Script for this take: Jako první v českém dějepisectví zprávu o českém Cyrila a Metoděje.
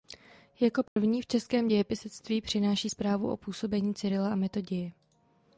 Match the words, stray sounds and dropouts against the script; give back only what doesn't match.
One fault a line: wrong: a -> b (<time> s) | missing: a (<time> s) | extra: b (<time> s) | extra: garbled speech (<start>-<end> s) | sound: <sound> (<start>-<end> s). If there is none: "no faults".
sound: dropout (0.9-1.0 s)
extra: přináší (2.4 s)
wrong: českém -> působení (3.4 s)